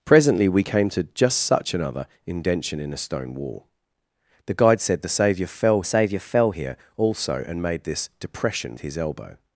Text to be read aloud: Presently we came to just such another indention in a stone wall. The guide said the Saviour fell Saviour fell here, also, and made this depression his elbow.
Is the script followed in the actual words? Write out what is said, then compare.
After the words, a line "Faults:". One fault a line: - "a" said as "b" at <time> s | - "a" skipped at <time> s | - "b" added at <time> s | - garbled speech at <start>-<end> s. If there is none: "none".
Presently we came to just such another indention in a stone wall. The guide said the Saviour fell Saviour fell here, also, and made this depression his elbow.
Faults:
none